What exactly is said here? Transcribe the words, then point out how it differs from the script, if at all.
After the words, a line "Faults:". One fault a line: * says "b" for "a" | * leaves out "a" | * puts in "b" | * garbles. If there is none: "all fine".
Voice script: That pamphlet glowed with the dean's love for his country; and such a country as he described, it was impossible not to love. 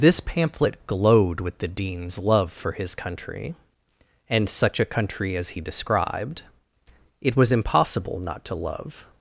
This pamphlet glowed with the dean's love for his country; and such a country as he described, it was impossible not to love.
Faults:
* says "This" for "That"